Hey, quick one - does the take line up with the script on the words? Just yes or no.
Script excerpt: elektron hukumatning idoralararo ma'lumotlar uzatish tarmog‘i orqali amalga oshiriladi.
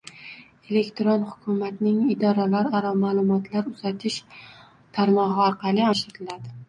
no